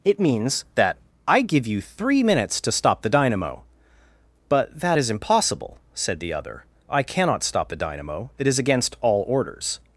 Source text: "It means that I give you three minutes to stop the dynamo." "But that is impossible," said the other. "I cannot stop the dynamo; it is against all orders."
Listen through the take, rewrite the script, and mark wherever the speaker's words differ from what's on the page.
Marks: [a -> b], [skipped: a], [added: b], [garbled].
"It means that I give you three minutes to stop the dynamo." "But that is impossible," said the other. "I cannot stop the dynamo; it is against all orders."